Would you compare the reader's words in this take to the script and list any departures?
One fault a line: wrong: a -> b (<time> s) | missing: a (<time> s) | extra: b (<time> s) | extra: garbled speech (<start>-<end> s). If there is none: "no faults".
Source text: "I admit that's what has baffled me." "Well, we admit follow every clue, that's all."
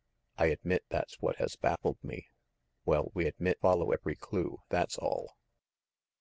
no faults